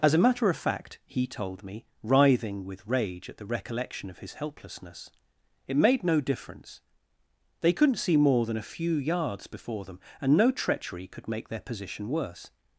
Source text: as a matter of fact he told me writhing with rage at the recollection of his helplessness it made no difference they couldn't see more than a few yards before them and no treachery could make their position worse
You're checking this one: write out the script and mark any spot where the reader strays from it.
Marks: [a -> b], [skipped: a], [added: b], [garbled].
as a matter of fact he told me writhing with rage at the recollection of his helplessness it made no difference they couldn't see more than a few yards before them and no treachery could make their position worse